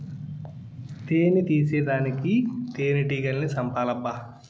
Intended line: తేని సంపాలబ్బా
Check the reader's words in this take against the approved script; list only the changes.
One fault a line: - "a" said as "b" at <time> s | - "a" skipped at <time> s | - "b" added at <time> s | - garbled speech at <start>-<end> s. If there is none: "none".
- "తీసేదానికి తేనెటీగల్ని" added at 1.4 s